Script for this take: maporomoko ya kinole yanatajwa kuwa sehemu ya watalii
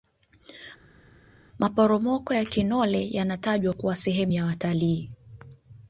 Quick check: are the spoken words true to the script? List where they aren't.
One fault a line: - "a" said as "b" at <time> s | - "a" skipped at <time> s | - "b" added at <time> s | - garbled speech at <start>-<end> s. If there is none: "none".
none